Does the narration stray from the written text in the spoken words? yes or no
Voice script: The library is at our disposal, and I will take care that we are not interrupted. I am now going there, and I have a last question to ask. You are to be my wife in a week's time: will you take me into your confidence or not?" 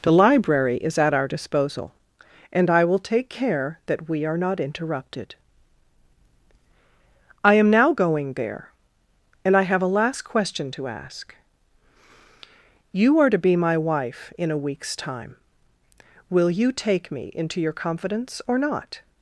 no